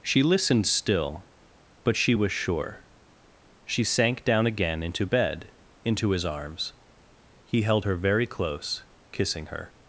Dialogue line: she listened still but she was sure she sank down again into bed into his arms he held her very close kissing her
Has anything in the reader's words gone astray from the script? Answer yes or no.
no